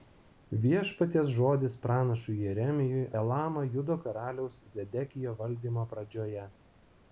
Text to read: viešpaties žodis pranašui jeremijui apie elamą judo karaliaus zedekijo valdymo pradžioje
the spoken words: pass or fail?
fail